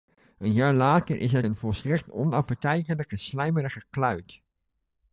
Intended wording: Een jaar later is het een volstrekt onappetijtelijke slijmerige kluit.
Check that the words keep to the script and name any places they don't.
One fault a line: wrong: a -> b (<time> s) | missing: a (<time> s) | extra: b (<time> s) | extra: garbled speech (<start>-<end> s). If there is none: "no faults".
no faults